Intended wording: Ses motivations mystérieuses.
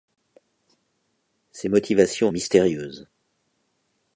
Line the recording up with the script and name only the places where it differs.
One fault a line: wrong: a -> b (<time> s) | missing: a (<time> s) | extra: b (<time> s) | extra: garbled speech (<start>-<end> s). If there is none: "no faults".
no faults